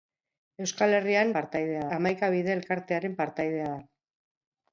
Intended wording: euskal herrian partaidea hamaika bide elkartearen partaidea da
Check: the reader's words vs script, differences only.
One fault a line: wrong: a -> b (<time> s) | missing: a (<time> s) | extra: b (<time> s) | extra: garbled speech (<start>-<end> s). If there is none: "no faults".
no faults